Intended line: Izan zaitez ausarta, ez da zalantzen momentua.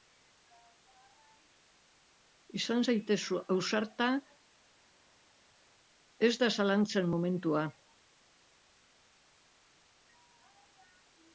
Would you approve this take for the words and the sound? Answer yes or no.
yes